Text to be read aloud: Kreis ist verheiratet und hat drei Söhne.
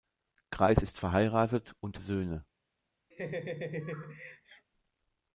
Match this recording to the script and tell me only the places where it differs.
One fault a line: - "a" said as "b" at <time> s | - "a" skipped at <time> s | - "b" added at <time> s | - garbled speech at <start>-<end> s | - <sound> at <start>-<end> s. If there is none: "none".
- "hat drei" skipped at 2.0 s
- laugh at 3.1-4.7 s